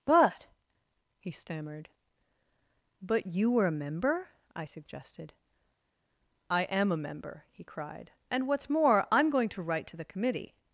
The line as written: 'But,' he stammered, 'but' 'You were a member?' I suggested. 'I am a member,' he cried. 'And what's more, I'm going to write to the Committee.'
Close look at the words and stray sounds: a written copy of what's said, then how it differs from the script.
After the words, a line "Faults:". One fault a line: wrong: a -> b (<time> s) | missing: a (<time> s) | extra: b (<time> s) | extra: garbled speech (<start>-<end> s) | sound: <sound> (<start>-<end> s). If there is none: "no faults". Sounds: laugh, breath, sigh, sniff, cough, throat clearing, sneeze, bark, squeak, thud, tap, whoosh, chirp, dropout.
'But,' he stammered, 'but' 'You were a member?' I suggested. 'I am a member,' he cried. 'And what's more, I'm going to write to the Committee.'
Faults:
no faults